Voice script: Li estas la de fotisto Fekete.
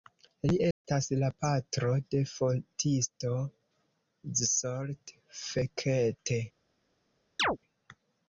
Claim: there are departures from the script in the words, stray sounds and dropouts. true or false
true